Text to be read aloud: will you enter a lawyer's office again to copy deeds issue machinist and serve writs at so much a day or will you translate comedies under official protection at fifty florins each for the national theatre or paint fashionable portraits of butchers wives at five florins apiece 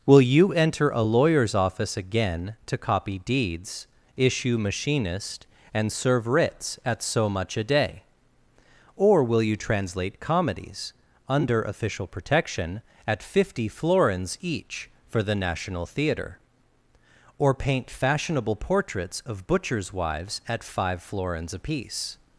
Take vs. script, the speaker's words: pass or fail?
pass